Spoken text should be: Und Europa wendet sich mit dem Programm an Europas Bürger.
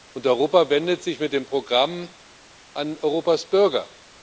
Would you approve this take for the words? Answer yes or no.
yes